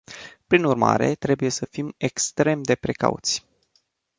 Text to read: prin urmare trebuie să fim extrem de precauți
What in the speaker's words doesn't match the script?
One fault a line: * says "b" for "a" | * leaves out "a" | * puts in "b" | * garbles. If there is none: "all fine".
all fine